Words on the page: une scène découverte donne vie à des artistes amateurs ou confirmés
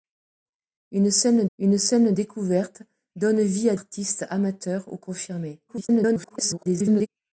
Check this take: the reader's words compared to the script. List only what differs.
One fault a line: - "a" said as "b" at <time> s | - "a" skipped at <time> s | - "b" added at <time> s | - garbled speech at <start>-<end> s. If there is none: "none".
- "une scène" added at 1.6 s
- "des" skipped at 3.8 s
- garbled speech at 5.7-7.1 s